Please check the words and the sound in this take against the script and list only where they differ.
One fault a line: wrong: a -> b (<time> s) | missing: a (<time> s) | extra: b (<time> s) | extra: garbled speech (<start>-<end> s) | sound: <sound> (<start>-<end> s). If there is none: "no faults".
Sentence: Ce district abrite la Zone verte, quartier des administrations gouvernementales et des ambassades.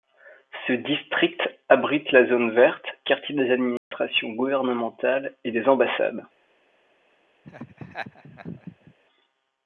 sound: dropout (3.8-3.9 s)
sound: laugh (7.4-8.9 s)